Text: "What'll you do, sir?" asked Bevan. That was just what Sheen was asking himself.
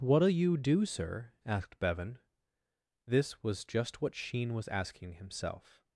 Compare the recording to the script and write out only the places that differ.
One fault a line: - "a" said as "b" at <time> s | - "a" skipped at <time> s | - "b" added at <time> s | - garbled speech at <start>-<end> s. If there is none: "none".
- "That" said as "This" at 3.0 s